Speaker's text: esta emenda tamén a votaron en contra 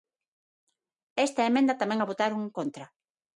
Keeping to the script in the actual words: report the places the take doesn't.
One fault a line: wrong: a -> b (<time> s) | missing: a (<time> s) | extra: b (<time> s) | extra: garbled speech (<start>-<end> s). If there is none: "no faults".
no faults